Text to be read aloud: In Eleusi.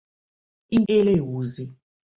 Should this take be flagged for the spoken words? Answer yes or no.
no